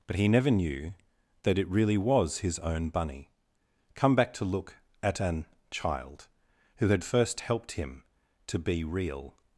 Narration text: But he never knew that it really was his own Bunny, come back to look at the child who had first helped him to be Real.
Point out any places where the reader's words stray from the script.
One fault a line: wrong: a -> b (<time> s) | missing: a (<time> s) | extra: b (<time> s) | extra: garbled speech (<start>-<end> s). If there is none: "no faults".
wrong: the -> an (5.2 s)